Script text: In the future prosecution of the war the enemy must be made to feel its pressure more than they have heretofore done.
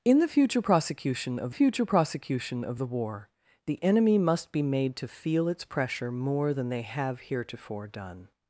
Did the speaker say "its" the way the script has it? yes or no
yes